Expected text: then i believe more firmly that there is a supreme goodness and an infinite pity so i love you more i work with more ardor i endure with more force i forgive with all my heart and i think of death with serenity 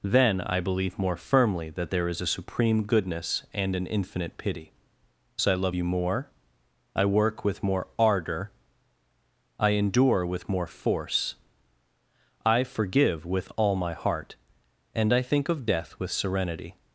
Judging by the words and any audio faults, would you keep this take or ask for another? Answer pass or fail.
pass